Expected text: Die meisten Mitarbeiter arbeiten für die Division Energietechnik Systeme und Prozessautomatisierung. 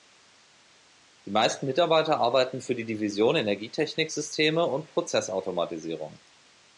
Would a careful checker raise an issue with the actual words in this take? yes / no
no